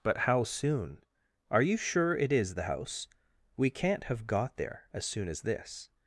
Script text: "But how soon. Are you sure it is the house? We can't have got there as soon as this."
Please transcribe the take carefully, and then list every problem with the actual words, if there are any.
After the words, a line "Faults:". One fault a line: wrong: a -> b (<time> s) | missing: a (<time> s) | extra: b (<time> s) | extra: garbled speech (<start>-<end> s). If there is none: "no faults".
"But how soon. Are you sure it is the house? We can't have got there as soon as this."
Faults:
no faults